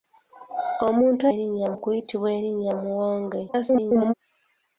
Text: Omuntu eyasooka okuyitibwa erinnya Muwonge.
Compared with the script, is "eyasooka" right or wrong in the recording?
wrong